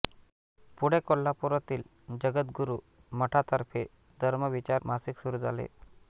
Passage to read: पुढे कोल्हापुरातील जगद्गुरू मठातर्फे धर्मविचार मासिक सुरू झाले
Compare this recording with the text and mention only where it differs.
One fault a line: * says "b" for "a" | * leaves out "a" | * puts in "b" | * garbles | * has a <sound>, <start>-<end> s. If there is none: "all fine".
all fine